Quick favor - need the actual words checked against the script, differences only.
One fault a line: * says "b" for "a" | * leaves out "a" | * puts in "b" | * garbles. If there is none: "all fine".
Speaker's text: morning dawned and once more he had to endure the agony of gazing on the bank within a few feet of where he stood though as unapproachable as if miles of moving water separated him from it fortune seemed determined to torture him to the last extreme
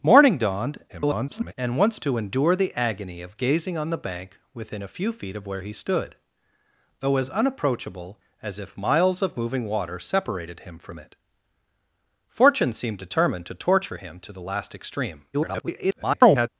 * garbles
* leaves out "more he had"
* garbles